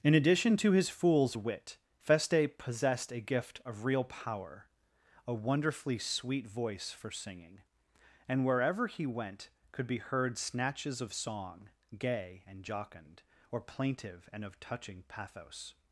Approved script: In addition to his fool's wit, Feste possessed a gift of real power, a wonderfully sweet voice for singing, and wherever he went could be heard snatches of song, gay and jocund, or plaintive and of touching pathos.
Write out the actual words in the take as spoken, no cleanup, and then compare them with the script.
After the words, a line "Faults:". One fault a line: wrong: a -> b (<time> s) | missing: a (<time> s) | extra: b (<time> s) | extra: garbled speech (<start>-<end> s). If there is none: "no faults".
In addition to his fool's wit, Feste possessed a gift of real power, a wonderfully sweet voice for singing, and wherever he went could be heard snatches of song, gay and jocund, or plaintive and of touching pathos.
Faults:
no faults